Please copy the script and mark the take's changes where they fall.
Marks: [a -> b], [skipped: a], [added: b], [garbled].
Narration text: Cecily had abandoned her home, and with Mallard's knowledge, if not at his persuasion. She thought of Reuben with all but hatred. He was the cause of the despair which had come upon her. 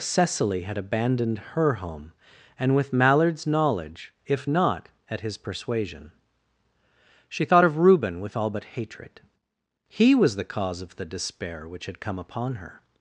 Cecily had abandoned her home, and with Mallard's knowledge, if not at his persuasion. She thought of Reuben with all but hatred. He was the cause of the despair which had come upon her.